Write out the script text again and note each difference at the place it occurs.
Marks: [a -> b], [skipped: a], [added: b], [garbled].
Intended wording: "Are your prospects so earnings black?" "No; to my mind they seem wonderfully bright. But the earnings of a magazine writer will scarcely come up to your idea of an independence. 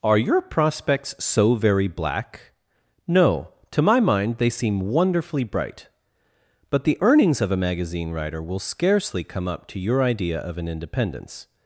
"Are your prospects so [earnings -> very] black?" "No; to my mind they seem wonderfully bright. But the earnings of a magazine writer will scarcely come up to your idea of an independence.